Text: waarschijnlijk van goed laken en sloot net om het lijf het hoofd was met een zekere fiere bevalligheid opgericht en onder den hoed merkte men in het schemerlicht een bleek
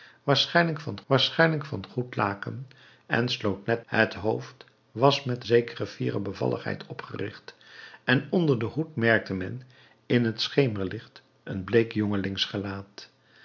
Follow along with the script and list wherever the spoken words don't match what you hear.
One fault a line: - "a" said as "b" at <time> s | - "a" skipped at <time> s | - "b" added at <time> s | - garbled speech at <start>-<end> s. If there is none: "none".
- "waarschijnlijk van" added at 1.1 s
- "om" skipped at 3.9 s
- "lijf het" skipped at 4.1 s
- "een" skipped at 5.4 s